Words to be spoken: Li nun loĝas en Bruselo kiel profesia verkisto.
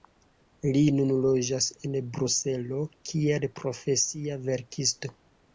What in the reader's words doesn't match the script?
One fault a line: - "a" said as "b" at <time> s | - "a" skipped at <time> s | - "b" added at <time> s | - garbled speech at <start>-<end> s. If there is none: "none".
none